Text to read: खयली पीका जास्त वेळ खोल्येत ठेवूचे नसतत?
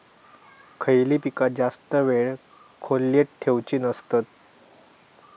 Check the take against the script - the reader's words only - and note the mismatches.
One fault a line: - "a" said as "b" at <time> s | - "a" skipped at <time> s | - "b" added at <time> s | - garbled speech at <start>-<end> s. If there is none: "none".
none